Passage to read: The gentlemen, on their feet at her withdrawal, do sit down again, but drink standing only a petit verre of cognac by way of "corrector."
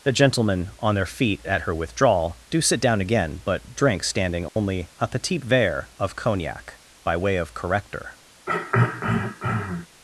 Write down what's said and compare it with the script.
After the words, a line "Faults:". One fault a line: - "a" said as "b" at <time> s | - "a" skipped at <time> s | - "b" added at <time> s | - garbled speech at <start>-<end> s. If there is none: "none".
The gentlemen, on their feet at her withdrawal, do sit down again, but drink standing only a petit verre of cognac by way of "corrector."
Faults:
none